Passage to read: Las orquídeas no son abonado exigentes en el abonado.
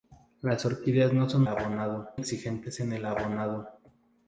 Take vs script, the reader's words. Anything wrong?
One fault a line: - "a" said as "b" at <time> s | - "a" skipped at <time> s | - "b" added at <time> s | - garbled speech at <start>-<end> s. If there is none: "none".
none